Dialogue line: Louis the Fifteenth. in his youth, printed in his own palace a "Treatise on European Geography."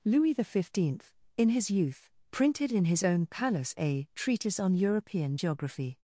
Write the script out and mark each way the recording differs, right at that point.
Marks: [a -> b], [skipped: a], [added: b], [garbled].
Louis the Fifteenth. in his youth, printed in his own palace a "Treatise on European Geography."